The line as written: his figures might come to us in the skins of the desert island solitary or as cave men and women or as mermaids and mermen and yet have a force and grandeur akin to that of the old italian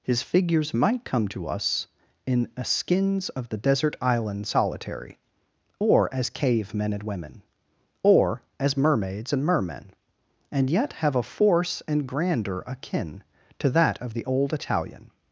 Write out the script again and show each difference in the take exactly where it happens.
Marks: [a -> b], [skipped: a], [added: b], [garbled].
his figures might come to us in [the -> a] skins of the desert island solitary or as cave men and women or as mermaids and mermen and yet have a force and grandeur akin to that of the old italian